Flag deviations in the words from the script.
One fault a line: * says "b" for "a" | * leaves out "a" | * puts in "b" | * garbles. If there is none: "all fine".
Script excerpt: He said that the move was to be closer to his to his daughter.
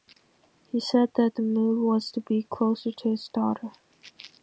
* leaves out "to his"